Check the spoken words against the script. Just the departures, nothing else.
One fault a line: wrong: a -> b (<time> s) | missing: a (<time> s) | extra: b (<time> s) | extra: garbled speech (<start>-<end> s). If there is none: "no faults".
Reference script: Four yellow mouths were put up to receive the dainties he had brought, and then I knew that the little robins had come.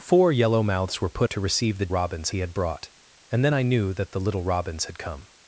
missing: up (1.3 s)
wrong: dainties -> robins (1.9 s)